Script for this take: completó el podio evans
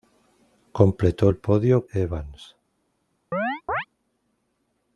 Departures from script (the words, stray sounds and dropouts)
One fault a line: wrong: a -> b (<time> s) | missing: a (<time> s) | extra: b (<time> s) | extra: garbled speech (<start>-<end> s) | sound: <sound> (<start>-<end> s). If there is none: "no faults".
sound: chirp (3.3-3.9 s)